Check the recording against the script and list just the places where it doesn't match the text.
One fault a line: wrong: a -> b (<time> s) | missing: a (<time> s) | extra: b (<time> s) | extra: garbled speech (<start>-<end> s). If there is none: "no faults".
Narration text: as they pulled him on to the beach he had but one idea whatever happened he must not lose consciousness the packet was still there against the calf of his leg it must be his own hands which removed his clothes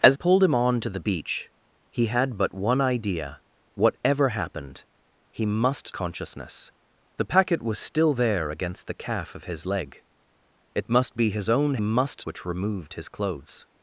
missing: they (0.2 s)
missing: not lose (5.9 s)
wrong: hands -> must (11.8 s)